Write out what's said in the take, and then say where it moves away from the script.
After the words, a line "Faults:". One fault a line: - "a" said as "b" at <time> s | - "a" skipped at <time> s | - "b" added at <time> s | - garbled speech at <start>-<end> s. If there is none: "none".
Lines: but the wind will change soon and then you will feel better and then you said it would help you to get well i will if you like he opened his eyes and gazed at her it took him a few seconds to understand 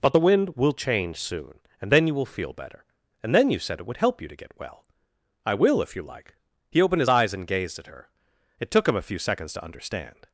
but the wind will change soon and then you will feel better and then you said it would help you to get well i will if you like he opened his eyes and gazed at her it took him a few seconds to understand
Faults:
none